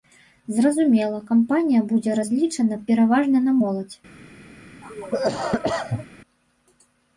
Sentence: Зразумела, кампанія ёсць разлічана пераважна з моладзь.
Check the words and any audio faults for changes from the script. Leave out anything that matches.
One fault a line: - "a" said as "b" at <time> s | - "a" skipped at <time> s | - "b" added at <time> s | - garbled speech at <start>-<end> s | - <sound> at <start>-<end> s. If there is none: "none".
- "ёсць" said as "будзе" at 1.9 s
- "з" said as "на" at 3.5 s
- cough at 4.8-6.1 s